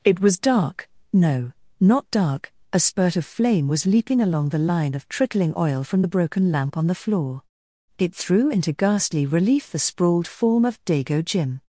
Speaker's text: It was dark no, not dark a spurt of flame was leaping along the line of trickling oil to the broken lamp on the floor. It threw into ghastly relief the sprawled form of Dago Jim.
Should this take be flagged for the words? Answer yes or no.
yes